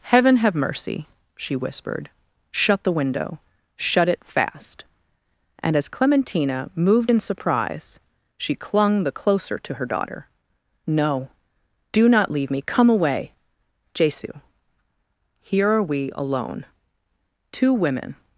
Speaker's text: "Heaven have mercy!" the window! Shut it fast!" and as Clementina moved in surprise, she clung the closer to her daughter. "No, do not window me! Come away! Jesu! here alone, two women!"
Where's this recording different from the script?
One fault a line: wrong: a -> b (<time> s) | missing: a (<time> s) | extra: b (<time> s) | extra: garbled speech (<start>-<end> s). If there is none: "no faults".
extra: she whispered shut (1.4 s)
wrong: window -> leave (12.3 s)
extra: are we (15.7 s)